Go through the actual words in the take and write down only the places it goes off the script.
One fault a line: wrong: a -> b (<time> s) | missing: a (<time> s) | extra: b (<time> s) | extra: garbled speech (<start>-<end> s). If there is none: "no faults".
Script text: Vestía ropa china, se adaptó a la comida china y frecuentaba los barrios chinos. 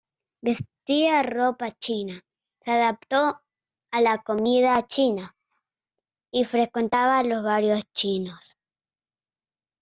no faults